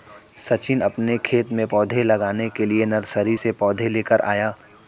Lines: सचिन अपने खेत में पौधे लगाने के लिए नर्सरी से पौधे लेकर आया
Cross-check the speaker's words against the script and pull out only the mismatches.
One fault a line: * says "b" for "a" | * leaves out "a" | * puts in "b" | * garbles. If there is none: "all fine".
all fine